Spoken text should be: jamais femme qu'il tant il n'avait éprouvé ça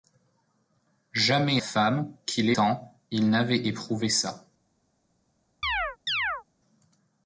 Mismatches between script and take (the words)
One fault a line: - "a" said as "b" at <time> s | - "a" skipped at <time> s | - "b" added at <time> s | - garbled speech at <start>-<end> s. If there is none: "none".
none